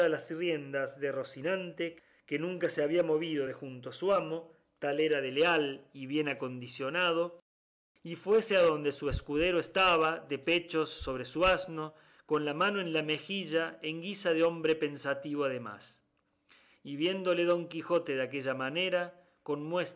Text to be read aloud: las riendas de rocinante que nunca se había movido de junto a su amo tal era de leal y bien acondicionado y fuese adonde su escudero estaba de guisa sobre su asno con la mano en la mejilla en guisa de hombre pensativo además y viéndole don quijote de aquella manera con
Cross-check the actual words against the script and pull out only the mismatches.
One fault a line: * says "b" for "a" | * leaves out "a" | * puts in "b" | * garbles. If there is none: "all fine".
* says "pechos" for "guisa"